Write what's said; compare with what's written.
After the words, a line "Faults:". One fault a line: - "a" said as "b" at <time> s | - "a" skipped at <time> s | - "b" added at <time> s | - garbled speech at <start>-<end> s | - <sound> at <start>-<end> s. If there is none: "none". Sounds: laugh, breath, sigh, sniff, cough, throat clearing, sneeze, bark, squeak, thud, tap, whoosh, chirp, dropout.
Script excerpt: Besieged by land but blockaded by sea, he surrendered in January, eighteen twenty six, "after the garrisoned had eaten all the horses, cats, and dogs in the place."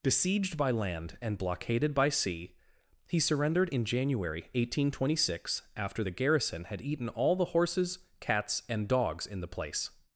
Besieged by land and blockaded by sea, he surrendered in January, eighteen twenty six, "after the garrison had eaten all the horses, cats, and dogs in the place."
Faults:
- "but" said as "and" at 1.2 s
- "garrisoned" said as "garrison" at 6.1 s